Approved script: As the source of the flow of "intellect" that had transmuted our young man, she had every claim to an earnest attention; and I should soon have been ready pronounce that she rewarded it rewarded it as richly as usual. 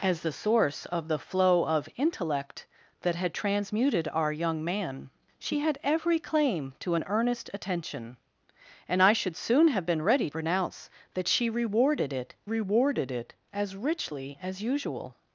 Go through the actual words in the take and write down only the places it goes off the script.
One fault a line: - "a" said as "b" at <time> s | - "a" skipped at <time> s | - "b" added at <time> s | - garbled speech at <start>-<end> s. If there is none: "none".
none